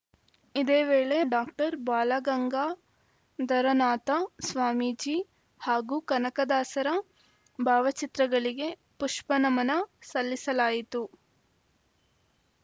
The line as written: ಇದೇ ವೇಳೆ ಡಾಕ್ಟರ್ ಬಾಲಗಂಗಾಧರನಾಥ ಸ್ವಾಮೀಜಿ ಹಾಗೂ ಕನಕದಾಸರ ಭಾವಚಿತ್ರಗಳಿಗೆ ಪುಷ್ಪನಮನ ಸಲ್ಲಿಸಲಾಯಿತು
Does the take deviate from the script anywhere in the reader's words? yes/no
no